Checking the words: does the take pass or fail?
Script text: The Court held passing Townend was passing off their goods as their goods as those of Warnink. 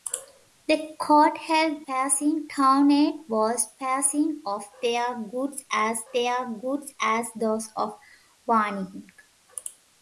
pass